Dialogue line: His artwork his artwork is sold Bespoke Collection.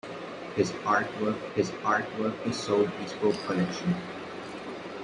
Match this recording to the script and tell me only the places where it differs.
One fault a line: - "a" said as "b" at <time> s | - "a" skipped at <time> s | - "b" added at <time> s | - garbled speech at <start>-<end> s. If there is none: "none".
none